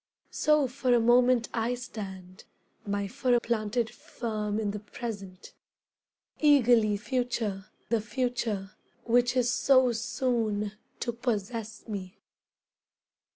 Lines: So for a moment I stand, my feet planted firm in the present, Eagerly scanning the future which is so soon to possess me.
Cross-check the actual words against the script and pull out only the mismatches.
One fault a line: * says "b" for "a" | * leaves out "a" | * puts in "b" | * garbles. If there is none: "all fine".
* says "for" for "feet"
* says "future" for "scanning"